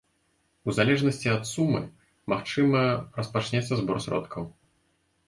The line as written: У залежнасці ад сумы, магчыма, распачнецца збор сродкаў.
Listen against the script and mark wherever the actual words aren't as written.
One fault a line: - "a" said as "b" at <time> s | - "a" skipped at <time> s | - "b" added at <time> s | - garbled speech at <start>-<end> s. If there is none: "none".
none